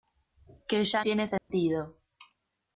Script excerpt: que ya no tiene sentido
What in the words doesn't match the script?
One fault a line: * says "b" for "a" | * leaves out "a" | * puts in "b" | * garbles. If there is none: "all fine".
* leaves out "no"